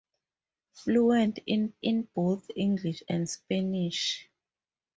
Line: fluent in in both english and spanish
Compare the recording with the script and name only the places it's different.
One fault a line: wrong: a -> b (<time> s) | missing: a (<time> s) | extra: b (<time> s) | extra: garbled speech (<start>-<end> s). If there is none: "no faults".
no faults